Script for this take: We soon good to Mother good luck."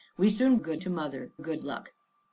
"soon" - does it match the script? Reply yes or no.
yes